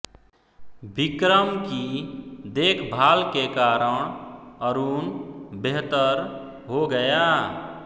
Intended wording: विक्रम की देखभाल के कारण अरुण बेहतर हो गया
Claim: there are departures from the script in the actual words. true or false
false